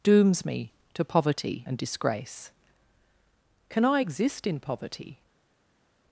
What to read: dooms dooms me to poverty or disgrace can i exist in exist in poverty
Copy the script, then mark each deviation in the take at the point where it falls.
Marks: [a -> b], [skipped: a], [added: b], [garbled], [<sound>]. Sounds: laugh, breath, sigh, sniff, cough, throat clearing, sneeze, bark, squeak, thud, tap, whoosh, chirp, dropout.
dooms [skipped: dooms] me to poverty [or -> and] disgrace can i exist in [skipped: exist in] poverty